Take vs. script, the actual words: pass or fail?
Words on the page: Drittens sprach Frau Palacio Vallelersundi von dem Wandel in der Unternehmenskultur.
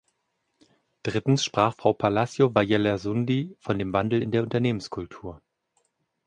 pass